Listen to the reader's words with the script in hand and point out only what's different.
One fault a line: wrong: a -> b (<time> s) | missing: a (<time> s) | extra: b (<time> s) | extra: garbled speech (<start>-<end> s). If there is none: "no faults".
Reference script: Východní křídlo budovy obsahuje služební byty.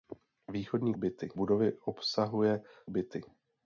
wrong: křídlo -> byty (0.9 s)
missing: služební (2.6 s)